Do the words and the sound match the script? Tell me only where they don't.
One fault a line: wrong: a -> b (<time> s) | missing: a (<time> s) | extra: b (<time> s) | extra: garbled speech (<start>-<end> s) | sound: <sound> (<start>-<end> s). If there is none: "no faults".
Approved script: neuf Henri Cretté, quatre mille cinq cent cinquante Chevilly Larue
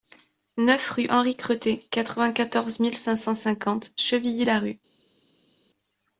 extra: rue (0.9 s)
extra: vingt quatorze (2.2 s)